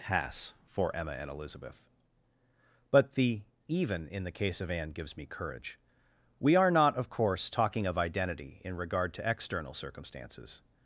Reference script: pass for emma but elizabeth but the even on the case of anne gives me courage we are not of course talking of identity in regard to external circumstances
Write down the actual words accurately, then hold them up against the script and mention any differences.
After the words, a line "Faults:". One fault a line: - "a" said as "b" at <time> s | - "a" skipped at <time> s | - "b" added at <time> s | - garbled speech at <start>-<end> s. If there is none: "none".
pass for emma and elizabeth but the even in the case of anne gives me courage we are not of course talking of identity in regard to external circumstances
Faults:
- "but" said as "and" at 1.1 s
- "on" said as "in" at 4.1 s